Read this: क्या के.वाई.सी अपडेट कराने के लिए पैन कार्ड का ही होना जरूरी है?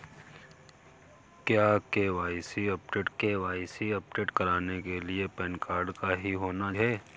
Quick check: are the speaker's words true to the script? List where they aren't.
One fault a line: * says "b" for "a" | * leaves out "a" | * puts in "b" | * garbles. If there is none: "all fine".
* puts in "के.वाई.सी अपडेट"
* leaves out "जरूरी"